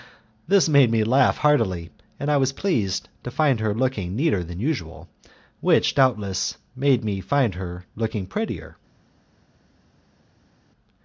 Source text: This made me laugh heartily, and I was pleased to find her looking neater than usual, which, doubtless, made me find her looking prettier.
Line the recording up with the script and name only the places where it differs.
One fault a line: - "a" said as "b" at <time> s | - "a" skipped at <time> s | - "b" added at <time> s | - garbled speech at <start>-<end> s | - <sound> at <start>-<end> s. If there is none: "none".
none